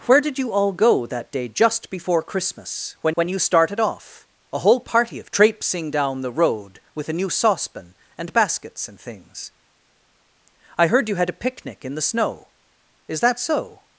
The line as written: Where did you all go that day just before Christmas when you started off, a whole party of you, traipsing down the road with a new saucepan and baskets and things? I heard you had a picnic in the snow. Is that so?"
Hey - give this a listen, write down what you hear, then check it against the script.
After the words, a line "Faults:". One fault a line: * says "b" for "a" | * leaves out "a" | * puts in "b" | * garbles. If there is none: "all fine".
Where did you all go that day just before Christmas when when you started off, a whole party of traipsing down the road with a new saucepan and baskets and things? I heard you had a picnic in the snow. Is that so?"
Faults:
* puts in "when"
* leaves out "you"